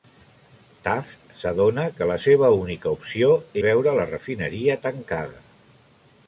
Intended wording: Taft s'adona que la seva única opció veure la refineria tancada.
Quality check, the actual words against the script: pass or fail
pass